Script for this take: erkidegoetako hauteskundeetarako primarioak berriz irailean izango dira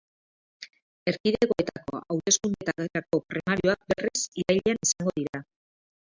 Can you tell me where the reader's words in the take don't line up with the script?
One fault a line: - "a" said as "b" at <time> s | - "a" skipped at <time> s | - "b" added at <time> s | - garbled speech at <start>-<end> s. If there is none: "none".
none